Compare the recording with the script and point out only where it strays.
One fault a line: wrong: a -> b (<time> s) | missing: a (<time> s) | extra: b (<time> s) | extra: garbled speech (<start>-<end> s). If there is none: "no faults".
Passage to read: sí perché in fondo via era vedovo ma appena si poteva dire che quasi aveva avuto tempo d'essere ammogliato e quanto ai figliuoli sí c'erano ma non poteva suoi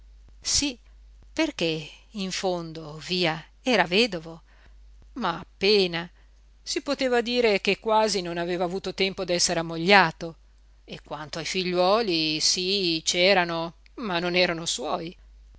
extra: non (8.2 s)
wrong: poteva -> erano (14.4 s)